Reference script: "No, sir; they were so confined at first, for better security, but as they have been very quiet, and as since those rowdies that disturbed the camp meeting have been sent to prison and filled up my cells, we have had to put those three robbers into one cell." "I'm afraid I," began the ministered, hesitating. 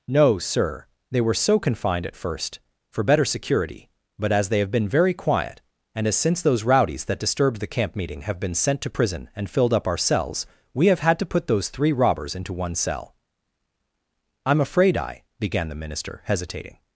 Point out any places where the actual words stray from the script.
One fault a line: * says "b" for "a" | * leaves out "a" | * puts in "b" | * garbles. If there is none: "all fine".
* says "our" for "my"
* says "minister" for "ministered"